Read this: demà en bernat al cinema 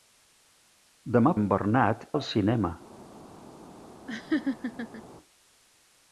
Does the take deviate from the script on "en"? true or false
false